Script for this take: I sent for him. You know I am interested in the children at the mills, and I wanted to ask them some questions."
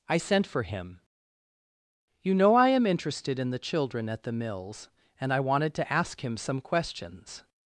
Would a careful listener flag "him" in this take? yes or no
no